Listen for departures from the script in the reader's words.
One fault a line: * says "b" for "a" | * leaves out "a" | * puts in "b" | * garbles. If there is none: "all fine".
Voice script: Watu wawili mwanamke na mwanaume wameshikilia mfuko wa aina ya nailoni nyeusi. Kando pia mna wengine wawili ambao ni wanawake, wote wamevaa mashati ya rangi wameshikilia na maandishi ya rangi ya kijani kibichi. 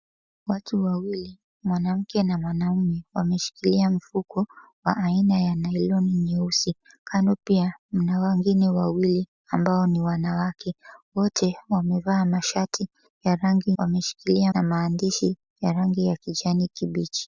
all fine